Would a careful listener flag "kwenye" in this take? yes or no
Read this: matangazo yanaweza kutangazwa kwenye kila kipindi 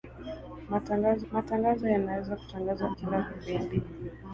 yes